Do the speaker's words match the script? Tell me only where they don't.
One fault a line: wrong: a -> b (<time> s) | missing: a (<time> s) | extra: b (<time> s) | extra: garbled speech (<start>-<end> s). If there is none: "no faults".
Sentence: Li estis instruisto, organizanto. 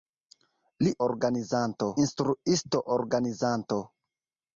wrong: estis -> organizanto (1.1 s)